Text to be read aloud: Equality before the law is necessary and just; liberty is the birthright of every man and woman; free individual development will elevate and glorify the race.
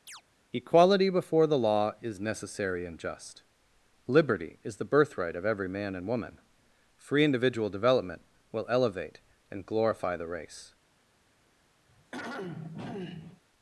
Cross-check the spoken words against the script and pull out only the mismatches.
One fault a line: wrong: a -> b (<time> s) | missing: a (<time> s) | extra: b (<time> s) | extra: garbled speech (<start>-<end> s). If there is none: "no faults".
no faults